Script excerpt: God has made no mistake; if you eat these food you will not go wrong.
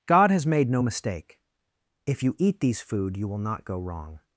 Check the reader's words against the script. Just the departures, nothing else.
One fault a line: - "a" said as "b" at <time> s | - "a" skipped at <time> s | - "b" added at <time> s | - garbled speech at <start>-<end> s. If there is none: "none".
none